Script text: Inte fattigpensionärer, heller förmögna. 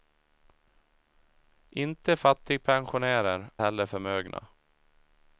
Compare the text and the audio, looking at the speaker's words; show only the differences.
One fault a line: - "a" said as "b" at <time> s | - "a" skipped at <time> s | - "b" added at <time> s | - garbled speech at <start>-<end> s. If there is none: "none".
none